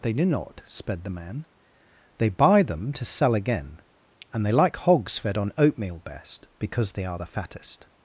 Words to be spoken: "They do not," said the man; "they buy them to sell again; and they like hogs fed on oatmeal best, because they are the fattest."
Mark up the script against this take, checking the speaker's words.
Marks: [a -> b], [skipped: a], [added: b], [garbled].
"They do not," [said -> sped] the man; "they buy them to sell again; and they like hogs fed on oatmeal best, because they are the fattest."